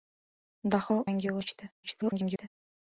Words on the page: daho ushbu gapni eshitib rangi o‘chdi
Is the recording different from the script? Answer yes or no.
yes